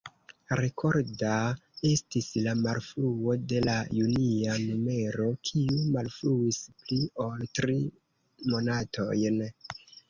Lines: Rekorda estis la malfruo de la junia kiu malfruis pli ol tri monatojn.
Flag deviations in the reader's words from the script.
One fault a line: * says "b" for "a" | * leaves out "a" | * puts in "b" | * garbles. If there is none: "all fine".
* puts in "numero"